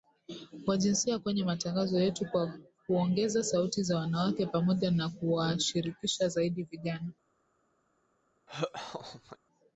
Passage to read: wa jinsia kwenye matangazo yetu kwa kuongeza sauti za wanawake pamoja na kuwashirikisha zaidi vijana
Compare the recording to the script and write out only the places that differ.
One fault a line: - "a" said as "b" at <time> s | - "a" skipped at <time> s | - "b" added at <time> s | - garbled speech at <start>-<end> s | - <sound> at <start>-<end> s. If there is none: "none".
- laugh at 8.5-9.4 s